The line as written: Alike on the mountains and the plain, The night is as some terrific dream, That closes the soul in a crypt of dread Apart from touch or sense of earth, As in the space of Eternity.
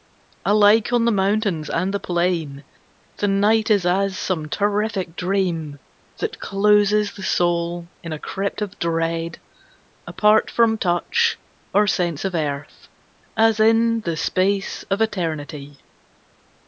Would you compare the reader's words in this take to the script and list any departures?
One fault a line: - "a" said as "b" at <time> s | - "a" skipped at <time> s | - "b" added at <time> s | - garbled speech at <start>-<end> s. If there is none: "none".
none